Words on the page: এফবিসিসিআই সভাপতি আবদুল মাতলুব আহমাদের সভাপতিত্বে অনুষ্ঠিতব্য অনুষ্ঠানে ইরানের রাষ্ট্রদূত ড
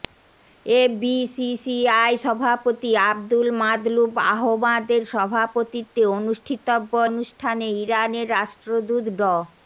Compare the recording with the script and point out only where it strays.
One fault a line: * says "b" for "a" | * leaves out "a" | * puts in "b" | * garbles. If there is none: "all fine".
all fine